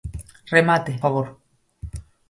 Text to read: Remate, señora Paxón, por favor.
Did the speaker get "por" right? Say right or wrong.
wrong